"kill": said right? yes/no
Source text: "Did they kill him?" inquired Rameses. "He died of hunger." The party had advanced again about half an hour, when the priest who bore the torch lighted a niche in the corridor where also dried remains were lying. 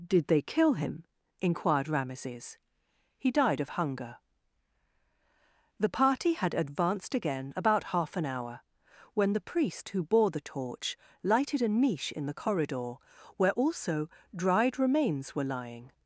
yes